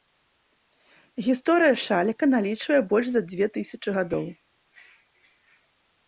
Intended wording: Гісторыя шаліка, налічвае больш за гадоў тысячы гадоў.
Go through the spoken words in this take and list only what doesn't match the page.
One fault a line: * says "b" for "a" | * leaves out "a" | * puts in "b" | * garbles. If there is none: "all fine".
* says "дзве" for "гадоў"